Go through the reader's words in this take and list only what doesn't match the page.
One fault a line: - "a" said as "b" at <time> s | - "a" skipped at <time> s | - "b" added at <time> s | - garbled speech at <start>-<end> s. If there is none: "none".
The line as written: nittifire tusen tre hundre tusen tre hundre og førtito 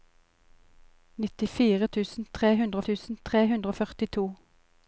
none